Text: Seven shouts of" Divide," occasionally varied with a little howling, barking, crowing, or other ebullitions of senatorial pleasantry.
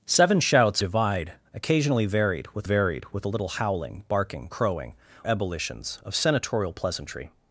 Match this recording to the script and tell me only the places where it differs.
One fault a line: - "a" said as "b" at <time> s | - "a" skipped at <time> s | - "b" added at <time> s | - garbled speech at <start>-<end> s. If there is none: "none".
- "of" skipped at 0.8 s
- "varied with" added at 2.6 s
- "or other" skipped at 4.9 s